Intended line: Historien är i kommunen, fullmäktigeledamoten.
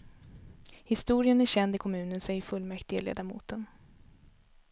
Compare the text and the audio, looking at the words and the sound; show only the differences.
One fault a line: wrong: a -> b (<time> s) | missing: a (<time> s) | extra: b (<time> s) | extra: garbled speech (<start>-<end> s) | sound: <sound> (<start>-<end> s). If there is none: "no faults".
extra: känd (1.4 s)
extra: säger (2.2 s)